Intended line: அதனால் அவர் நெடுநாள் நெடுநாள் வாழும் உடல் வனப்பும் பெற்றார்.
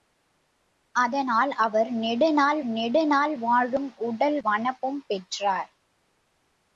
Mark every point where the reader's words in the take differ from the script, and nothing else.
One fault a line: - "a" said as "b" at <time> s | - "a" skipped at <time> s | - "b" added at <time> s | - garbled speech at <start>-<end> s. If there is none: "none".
none